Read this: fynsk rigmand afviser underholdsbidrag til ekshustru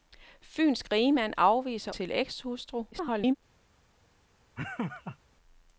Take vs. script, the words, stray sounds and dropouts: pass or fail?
fail